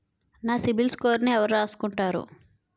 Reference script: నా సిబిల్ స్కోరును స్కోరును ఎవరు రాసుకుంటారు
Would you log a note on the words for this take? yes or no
yes